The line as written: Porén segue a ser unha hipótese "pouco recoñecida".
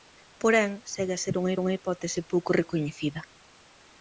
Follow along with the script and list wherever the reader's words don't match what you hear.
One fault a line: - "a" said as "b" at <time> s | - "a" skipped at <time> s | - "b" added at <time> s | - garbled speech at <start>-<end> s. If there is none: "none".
- "unha" added at 1.6 s